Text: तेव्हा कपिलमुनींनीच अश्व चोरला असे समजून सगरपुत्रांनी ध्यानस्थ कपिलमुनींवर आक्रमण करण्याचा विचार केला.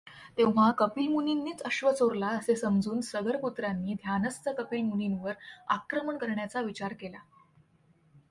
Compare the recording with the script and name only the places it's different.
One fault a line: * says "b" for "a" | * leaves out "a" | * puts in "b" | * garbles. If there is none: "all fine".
all fine